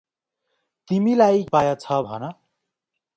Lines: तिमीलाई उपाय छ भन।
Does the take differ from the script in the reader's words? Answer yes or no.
no